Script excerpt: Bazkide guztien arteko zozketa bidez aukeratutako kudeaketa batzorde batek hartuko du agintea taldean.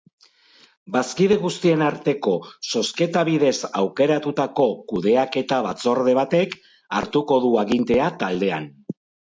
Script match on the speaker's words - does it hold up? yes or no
yes